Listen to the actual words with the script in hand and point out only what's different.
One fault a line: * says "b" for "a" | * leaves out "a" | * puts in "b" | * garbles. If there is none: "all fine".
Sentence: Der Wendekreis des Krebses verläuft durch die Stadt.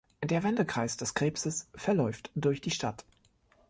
all fine